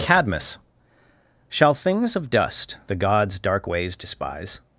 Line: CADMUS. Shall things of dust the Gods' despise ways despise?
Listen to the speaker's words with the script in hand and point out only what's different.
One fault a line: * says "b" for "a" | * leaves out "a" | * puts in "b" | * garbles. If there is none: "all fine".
* says "dark" for "despise"